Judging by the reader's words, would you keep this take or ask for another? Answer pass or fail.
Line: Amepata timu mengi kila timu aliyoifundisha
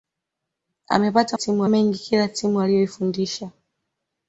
pass